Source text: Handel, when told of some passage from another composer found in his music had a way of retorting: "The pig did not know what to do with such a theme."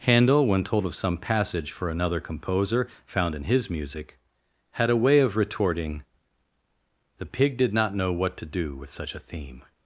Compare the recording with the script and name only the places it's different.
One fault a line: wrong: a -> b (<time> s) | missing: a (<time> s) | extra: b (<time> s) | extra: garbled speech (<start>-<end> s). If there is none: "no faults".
wrong: from -> for (1.7 s)